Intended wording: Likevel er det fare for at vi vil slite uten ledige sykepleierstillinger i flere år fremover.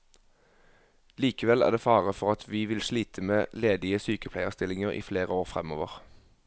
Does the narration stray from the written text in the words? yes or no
yes